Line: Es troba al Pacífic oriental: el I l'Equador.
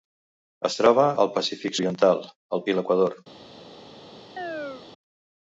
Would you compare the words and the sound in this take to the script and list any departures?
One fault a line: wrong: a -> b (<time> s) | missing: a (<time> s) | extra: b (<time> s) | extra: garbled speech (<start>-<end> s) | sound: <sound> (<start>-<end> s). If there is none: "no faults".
sound: chirp (4.4-4.9 s)